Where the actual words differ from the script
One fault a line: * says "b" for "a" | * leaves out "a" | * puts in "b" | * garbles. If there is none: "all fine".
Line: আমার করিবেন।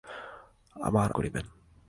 all fine